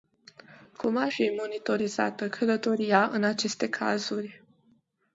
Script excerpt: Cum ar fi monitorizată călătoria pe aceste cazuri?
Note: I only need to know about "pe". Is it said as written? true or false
false